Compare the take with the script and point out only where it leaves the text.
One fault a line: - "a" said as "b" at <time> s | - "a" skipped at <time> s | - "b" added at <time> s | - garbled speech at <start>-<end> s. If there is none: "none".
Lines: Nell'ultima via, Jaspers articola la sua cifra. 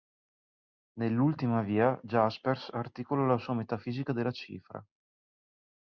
- "metafisica della" added at 3.5 s